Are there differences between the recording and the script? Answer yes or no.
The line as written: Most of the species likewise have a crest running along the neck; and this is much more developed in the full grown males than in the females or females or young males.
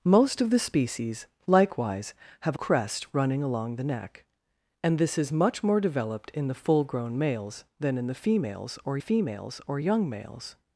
no